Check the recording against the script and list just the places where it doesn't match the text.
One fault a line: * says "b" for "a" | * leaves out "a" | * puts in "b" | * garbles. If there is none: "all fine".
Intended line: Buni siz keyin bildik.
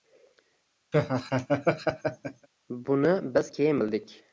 * says "biz" for "siz"